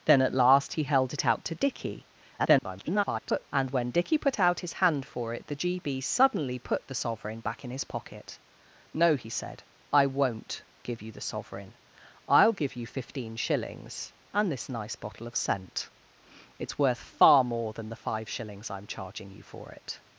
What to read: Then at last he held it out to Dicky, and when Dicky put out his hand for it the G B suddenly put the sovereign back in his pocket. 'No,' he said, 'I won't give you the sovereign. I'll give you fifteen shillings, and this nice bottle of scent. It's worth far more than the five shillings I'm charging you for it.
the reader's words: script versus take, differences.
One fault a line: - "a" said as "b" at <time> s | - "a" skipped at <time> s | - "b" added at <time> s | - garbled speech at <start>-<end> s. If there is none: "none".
- garbled speech at 2.4-3.5 s